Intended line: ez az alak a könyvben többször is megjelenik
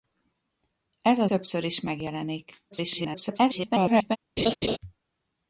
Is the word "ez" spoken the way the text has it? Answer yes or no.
yes